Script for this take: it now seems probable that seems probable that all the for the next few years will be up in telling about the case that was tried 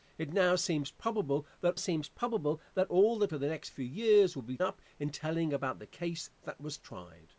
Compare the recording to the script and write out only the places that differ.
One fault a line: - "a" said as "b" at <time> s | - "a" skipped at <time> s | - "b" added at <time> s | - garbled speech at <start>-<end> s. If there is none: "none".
none